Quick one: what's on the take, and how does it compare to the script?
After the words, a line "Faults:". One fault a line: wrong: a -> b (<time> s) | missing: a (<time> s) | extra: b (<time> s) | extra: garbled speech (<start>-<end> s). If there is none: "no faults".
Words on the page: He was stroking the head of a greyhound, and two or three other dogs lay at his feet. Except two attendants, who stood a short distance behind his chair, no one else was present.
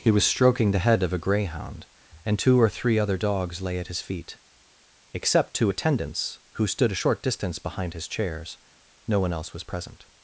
He was stroking the head of a greyhound, and two or three other dogs lay at his feet. Except two attendants, who stood a short distance behind his chairs, no one else was present.
Faults:
wrong: chair -> chairs (8.1 s)